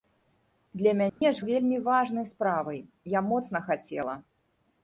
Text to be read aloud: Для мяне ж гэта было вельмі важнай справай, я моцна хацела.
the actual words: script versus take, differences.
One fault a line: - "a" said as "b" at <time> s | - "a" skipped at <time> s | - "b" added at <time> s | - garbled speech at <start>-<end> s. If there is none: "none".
- "гэта было" skipped at 1.4 s